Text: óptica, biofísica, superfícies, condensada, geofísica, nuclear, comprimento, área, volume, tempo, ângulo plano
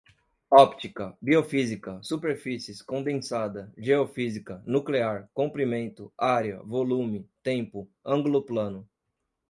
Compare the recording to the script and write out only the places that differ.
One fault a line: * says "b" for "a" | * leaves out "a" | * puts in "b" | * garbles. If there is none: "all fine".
all fine